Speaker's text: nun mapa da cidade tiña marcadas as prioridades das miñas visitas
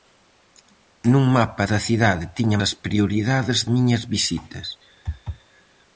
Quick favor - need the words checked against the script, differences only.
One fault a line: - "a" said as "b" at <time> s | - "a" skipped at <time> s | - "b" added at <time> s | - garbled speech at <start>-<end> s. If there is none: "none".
- "marcadas" skipped at 2.6 s
- "das" skipped at 3.6 s